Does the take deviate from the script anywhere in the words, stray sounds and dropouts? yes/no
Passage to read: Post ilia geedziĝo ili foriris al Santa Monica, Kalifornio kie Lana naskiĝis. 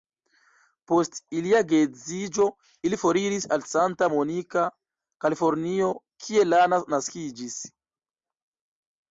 no